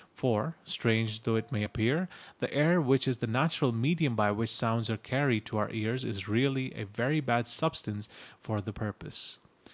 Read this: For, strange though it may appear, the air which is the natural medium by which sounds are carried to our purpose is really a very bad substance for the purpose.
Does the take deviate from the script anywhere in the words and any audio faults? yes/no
yes